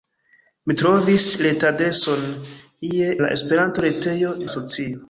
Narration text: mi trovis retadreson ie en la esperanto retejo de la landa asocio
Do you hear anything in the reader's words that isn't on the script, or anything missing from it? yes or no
yes